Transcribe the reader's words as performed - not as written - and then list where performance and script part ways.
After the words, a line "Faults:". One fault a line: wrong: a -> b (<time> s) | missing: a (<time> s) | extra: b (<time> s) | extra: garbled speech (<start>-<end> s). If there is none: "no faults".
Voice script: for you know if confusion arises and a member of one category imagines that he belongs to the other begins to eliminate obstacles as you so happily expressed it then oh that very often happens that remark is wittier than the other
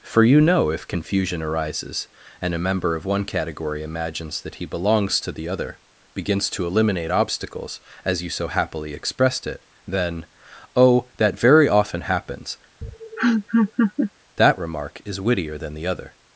for you know if confusion arises and a member of one category imagines that he belongs to the other begins to eliminate obstacles as you so happily expressed it then oh that very often happens that remark is wittier than the other
Faults:
no faults